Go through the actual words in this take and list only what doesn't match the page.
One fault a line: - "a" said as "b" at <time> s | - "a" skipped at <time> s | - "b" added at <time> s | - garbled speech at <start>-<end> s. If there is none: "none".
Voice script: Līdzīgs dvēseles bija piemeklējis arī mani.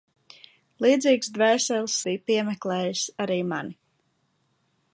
none